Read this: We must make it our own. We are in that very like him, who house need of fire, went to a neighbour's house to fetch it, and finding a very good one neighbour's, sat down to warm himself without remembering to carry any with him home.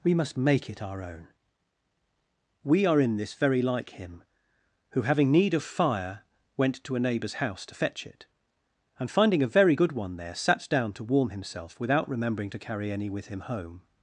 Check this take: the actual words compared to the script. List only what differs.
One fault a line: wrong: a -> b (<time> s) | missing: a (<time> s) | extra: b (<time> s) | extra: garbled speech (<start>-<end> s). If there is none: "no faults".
wrong: that -> this (3.2 s)
wrong: house -> having (5.0 s)
wrong: neighbour's -> there (10.2 s)